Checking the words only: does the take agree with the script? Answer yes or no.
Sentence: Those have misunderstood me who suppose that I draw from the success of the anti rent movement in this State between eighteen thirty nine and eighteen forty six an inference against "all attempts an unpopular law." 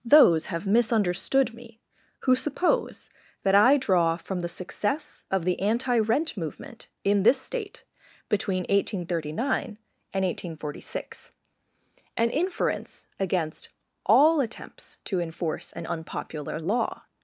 no